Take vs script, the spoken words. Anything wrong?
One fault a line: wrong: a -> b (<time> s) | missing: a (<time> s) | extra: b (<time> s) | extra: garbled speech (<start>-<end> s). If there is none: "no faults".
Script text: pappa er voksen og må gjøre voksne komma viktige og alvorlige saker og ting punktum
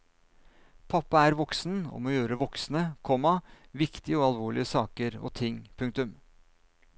no faults